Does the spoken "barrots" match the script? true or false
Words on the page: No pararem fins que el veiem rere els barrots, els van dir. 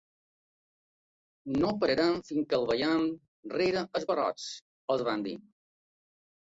true